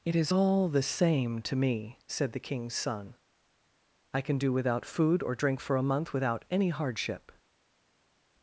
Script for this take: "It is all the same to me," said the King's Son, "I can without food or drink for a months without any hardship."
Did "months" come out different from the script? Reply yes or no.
yes